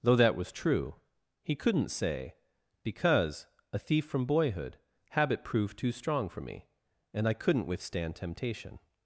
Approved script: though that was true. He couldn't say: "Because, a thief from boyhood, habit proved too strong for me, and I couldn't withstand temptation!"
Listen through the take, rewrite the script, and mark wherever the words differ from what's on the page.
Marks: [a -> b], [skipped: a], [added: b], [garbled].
though that was true. He couldn't say: "Because, a thief from boyhood, habit proved too strong for me, and I couldn't withstand temptation!"